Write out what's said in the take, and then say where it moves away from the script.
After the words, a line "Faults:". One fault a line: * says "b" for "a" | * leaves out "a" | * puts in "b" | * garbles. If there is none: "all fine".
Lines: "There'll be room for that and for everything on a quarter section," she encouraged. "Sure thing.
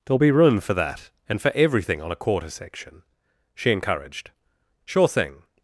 "There'll be room for that and for everything on a quarter section," she encouraged. "Sure thing.
Faults:
all fine